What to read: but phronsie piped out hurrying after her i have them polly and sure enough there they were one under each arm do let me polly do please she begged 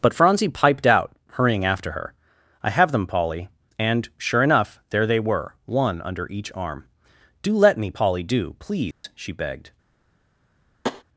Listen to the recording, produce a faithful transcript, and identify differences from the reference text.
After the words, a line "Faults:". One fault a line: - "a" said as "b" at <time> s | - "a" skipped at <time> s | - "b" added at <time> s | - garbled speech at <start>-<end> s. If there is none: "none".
but phronsie piped out hurrying after her i have them polly and sure enough there they were one under each arm do let me polly do please she begged
Faults:
none